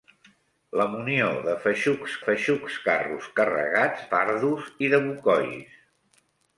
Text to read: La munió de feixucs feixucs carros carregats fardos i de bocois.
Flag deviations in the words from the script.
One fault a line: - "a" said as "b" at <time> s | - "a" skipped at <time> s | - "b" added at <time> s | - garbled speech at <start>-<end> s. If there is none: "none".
none